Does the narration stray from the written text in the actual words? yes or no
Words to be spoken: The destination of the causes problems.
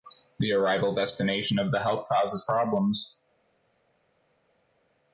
yes